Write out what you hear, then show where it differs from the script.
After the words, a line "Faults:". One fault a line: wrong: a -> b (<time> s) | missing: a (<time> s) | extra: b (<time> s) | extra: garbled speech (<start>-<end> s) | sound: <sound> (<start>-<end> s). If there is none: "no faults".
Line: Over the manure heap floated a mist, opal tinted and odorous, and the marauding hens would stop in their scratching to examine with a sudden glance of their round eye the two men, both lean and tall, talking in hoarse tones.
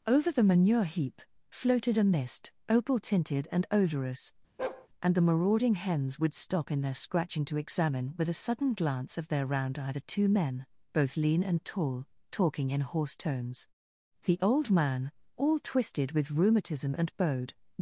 Over the manure heap floated a mist, opal tinted and odorous, and the marauding hens would stop in their scratching to examine with a sudden glance of their round eye the two men, both lean and tall, talking in hoarse tones. The old man, all twisted with rheumatism and bowed
Faults:
sound: bark (4.6-4.9 s)
extra: The old man all twisted with rheumatism and bowed (14.2 s)